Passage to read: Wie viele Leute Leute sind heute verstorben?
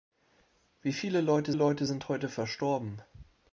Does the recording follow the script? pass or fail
pass